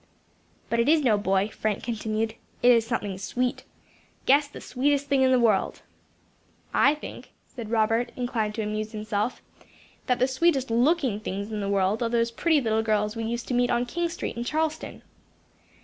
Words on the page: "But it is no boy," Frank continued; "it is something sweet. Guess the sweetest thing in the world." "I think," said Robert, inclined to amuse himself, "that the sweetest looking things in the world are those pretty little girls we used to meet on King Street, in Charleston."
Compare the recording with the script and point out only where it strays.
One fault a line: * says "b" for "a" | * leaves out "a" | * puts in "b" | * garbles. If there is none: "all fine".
all fine